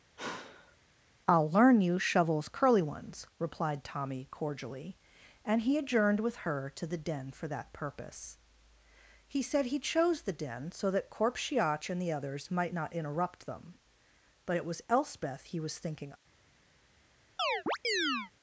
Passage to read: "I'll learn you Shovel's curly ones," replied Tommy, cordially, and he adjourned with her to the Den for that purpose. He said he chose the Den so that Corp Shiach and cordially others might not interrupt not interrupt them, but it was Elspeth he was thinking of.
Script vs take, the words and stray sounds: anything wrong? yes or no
yes